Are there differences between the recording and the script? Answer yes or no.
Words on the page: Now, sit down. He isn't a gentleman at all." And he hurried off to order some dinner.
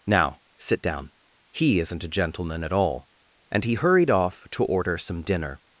no